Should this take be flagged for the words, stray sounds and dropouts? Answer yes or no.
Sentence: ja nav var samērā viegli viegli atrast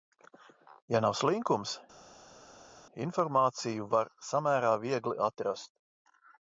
yes